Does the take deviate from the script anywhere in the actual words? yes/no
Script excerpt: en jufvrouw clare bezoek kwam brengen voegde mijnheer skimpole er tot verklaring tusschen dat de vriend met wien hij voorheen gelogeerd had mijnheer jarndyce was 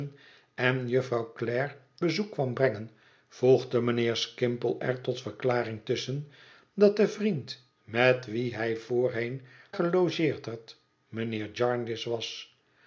no